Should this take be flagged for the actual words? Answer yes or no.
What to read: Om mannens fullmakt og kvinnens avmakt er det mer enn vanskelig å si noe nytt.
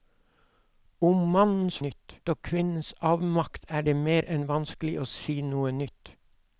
yes